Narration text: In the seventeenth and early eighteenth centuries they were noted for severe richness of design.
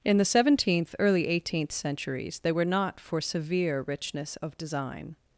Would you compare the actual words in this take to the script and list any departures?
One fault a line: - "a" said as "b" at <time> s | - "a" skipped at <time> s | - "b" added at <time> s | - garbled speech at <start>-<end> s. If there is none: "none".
- "and" skipped at 0.9 s
- "noted" said as "not" at 2.6 s